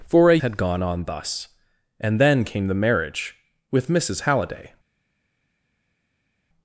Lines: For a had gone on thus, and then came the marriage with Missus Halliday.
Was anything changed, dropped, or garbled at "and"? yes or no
no